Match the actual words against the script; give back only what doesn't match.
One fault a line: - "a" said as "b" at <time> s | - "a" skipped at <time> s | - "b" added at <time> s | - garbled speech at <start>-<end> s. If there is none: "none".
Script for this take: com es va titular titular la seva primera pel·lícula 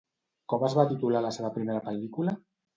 - "titular" skipped at 1.2 s